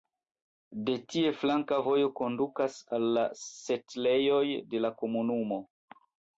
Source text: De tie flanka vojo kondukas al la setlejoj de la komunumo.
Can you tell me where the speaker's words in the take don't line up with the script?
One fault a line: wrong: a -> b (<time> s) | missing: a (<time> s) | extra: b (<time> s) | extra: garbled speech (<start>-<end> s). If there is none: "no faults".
no faults